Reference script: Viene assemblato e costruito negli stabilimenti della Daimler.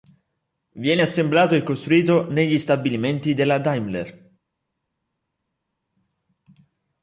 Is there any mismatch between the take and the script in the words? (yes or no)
no